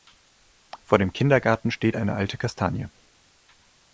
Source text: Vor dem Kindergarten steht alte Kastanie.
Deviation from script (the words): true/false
true